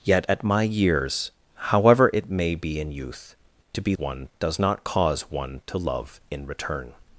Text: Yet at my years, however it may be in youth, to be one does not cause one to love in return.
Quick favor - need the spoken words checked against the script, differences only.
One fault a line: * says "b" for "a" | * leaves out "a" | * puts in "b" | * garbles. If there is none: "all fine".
all fine